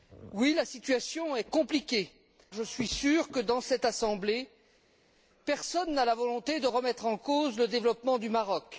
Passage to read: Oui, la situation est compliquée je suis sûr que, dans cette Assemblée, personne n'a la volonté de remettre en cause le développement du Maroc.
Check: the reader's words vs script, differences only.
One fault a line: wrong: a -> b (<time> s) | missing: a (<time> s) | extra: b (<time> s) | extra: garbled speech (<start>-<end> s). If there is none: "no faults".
no faults